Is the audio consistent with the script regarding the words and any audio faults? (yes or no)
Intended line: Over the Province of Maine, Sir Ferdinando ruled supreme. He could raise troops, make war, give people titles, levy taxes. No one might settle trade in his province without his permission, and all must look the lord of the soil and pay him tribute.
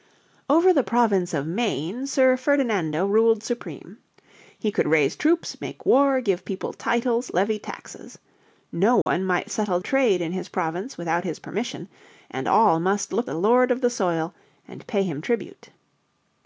no